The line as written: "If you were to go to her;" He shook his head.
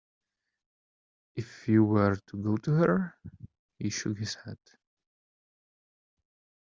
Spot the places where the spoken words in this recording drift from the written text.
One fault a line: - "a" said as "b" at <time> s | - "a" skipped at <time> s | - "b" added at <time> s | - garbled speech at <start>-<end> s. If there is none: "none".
none